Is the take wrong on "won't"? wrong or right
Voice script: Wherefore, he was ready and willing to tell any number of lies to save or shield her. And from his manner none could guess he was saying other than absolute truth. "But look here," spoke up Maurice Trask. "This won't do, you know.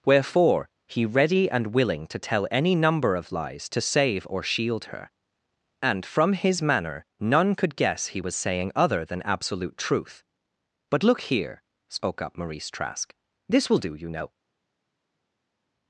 wrong